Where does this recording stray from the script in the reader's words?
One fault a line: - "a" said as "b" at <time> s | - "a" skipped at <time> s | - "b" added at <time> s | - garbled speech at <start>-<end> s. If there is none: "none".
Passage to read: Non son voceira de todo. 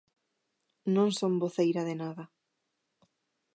- "todo" said as "nada" at 2.0 s